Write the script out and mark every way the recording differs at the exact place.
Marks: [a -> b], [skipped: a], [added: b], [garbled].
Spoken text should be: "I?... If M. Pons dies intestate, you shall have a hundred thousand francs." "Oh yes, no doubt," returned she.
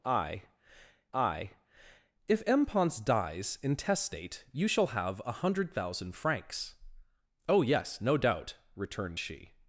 "I?... [added: I] If M. Pons dies intestate, you shall have a hundred thousand francs." "Oh yes, no doubt," returned she.